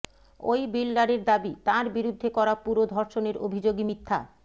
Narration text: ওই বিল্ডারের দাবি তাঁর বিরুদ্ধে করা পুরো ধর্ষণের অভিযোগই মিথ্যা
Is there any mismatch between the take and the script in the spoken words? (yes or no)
no